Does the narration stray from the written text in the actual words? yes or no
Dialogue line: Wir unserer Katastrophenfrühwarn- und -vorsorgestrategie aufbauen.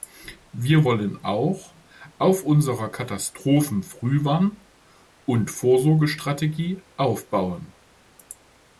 yes